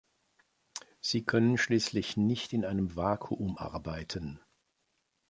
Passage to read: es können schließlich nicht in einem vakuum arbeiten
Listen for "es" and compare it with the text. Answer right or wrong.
wrong